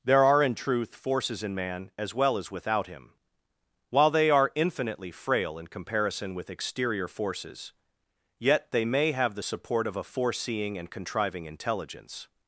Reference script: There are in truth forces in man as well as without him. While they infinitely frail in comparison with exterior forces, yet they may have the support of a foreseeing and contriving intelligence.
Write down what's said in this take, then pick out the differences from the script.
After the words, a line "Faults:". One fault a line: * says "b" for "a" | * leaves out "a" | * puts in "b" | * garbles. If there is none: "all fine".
There are in truth forces in man as well as without him. While they are infinitely frail in comparison with exterior forces, yet they may have the support of a foreseeing and contriving intelligence.
Faults:
* puts in "are"